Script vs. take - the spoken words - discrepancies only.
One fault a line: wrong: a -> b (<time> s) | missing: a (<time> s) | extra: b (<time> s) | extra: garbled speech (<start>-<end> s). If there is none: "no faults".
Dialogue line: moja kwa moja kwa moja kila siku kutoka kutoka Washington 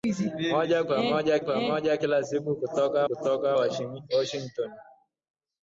no faults